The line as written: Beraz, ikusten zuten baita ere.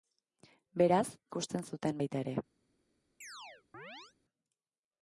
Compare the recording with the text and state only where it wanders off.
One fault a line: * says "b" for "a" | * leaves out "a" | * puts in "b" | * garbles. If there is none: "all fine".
all fine